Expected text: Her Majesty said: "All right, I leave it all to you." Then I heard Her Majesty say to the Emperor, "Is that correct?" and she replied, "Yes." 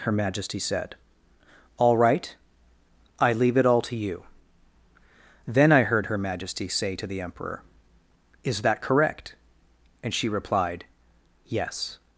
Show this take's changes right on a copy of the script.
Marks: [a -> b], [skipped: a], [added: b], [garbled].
Her Majesty said: "All right, I leave it all to you." Then I heard Her Majesty say to the Emperor, "Is that correct?" and she replied, "Yes."